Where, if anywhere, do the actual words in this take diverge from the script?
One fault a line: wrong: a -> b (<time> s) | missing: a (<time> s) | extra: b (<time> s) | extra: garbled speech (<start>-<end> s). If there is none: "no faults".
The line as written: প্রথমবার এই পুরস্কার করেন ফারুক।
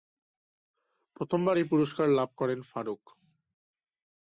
extra: লাভ (2.1 s)